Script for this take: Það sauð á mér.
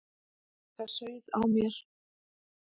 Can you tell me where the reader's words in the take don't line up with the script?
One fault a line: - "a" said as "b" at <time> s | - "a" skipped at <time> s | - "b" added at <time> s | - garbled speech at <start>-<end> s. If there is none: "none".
none